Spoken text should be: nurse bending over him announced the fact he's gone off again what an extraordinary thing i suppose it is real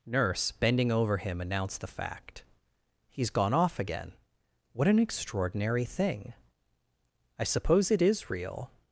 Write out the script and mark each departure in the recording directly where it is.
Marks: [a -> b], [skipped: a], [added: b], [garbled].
nurse bending over him announced the fact he's gone off again what an extraordinary thing i suppose it is real